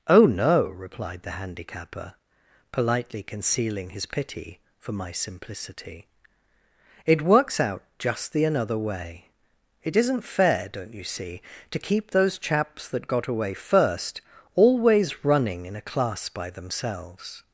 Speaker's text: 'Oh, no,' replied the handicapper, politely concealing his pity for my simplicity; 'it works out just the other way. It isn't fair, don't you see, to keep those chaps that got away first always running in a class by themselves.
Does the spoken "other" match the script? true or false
false